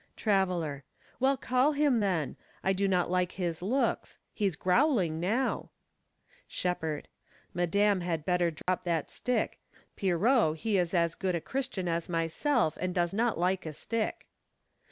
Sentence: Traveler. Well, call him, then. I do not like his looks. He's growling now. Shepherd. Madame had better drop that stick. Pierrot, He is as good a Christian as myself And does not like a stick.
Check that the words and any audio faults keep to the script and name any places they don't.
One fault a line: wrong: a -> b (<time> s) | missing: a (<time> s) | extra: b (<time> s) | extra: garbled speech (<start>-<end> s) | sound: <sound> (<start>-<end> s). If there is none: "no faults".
sound: dropout (8.6-8.7 s)